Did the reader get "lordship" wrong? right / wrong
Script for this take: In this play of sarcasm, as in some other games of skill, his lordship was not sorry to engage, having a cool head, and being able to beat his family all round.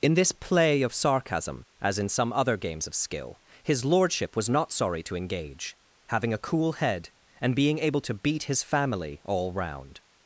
right